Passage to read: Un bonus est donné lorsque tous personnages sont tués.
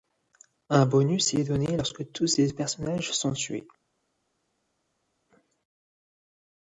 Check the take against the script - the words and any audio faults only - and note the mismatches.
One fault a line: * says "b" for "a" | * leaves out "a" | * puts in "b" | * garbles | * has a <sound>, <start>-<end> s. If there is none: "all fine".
* puts in "ces"